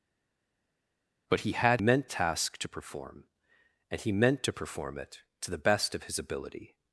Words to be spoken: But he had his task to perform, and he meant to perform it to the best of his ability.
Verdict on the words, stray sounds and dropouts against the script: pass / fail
fail